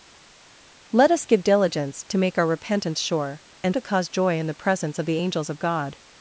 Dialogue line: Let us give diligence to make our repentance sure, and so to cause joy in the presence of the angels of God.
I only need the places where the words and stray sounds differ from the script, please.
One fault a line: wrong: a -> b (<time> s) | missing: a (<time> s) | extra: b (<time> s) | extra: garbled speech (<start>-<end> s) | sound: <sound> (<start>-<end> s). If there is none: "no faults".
missing: so (3.8 s)